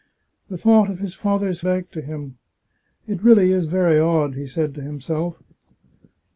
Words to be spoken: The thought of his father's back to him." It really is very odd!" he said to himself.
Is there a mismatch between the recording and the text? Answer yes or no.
no